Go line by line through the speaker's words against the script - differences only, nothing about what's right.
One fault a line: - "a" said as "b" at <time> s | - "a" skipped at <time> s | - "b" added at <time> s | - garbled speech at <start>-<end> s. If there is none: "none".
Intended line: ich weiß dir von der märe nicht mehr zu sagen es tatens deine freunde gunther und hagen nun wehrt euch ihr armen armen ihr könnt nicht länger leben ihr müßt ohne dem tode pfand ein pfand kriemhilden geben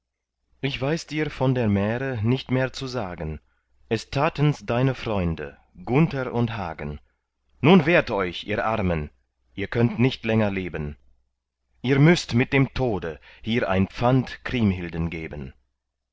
- "armen" skipped at 9.1 s
- "ohne" said as "mit" at 12.3 s
- "pfand" said as "hier" at 13.4 s